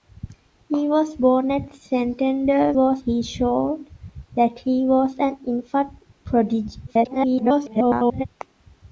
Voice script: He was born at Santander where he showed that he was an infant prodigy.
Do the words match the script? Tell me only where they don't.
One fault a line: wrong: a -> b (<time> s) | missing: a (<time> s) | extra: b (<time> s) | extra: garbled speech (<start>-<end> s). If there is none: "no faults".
wrong: where -> was (2.7 s)
extra: garbled speech (6.9-8.3 s)